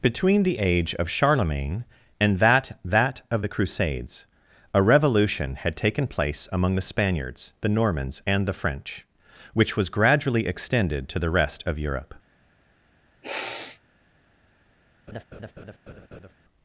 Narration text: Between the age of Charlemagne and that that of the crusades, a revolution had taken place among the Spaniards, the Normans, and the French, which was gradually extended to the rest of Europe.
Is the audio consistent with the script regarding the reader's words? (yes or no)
yes